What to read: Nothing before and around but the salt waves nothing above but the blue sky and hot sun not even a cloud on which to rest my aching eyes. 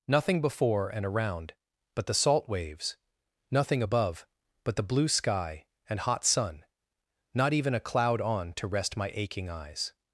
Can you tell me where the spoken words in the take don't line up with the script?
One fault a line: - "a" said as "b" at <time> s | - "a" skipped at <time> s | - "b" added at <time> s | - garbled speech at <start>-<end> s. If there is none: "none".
- "which" skipped at 8.5 s